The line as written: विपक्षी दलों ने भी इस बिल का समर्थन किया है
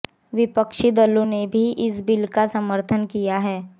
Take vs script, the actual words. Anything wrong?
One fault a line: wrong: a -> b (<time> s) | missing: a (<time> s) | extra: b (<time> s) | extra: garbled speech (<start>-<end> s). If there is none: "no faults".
no faults